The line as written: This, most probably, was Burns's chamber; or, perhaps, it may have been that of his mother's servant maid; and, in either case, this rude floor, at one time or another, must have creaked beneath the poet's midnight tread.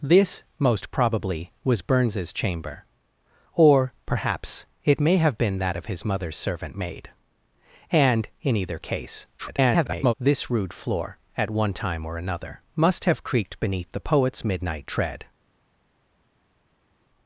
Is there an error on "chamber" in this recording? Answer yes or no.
no